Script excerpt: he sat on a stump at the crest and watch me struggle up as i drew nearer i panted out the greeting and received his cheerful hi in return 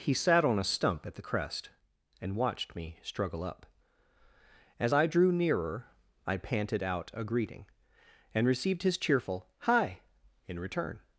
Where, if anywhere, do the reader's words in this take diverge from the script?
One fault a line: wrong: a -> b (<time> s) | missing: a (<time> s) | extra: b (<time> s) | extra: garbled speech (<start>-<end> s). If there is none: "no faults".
wrong: watch -> watched (2.4 s)
wrong: the -> a (7.1 s)